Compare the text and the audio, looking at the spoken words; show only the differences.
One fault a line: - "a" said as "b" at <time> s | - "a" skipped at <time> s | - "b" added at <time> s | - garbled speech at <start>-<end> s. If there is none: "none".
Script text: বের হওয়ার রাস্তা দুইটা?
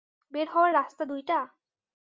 none